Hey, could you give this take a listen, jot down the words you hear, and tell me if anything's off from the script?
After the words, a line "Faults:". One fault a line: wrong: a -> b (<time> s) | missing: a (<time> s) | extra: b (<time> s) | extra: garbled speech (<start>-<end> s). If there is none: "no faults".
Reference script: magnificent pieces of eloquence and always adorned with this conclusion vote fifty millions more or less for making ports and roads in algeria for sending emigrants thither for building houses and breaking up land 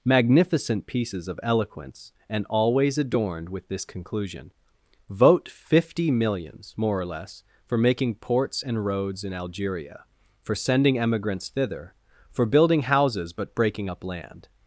magnificent pieces of eloquence and always adorned with this conclusion vote fifty millions more or less for making ports and roads in algeria for sending emigrants thither for building houses but breaking up land
Faults:
wrong: and -> but (13.3 s)